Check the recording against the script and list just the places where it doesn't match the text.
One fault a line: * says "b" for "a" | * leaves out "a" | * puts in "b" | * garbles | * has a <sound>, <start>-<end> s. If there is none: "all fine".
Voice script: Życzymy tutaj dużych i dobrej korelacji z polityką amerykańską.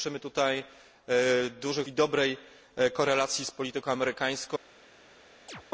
* has a chirp, 5.5-5.6 s